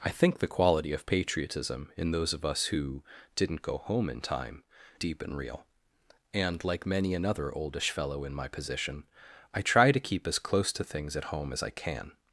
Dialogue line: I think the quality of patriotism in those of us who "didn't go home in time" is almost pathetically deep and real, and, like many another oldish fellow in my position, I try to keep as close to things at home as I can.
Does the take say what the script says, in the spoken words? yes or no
no